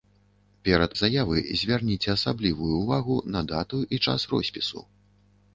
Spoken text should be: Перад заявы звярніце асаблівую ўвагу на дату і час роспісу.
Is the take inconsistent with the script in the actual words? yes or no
no